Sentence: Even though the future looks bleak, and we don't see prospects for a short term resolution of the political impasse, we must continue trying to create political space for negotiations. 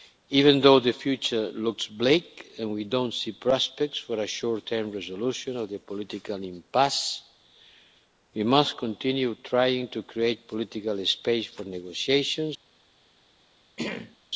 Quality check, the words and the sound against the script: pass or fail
fail